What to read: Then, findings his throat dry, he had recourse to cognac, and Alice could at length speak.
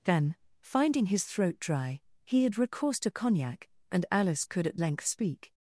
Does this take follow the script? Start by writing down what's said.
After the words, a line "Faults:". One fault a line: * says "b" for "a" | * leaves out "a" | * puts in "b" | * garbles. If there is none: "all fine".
Then, finding his throat dry, he had recourse to cognac, and Alice could at length speak.
Faults:
* says "finding" for "findings"